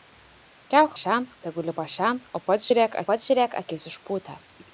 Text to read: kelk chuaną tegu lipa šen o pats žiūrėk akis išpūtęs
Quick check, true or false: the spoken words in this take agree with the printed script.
false